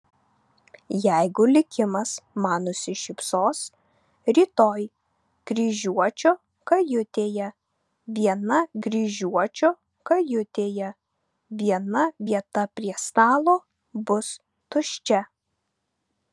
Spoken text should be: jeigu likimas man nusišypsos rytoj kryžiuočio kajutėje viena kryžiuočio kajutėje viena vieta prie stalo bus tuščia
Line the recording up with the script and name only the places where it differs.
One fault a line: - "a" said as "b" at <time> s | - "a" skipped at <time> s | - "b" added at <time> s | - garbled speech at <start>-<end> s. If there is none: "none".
none